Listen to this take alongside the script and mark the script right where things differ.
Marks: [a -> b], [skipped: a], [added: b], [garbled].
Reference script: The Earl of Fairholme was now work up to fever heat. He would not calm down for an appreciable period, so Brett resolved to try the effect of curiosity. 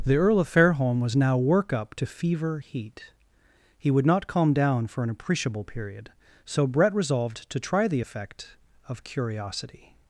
The Earl of Fairholme was now work up to fever heat. He would not calm down for an appreciable period, so Brett resolved to try the effect of curiosity.